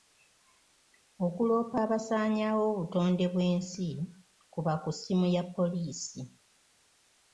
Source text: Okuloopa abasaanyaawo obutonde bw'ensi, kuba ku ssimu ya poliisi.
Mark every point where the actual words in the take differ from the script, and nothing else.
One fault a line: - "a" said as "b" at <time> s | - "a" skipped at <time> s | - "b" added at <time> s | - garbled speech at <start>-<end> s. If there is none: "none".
none